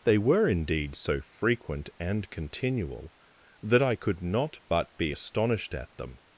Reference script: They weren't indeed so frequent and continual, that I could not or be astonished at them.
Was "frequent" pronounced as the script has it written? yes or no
yes